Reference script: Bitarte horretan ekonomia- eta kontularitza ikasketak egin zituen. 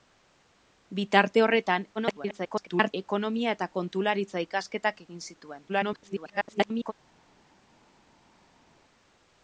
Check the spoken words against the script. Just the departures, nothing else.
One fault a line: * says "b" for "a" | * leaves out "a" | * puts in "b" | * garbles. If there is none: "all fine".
* garbles
* garbles